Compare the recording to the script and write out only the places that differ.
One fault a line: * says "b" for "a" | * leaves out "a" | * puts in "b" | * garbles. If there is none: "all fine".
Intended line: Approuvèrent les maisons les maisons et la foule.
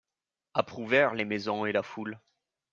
* leaves out "les maisons"